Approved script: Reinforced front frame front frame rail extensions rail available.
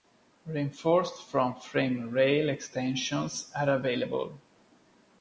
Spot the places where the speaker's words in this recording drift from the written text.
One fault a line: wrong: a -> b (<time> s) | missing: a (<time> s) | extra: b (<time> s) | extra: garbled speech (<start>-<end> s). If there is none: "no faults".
missing: front frame (2.1 s)
wrong: rail -> are (3.5 s)